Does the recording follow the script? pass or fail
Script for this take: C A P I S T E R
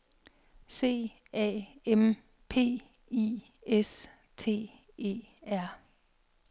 fail